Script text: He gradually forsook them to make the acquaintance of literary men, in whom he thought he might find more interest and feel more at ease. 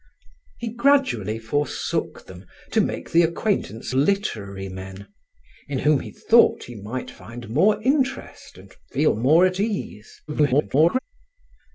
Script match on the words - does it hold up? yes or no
no